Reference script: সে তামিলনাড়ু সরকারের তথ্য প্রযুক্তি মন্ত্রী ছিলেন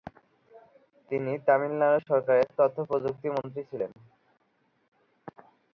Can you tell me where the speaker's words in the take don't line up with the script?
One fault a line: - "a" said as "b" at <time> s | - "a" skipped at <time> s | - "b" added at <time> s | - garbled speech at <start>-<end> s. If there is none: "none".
- "সে" said as "তিনি" at 1.1 s